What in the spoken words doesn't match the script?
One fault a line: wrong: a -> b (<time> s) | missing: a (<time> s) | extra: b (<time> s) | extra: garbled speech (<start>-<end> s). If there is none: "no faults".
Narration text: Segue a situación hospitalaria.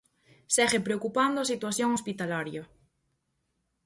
extra: preocupando (0.9 s)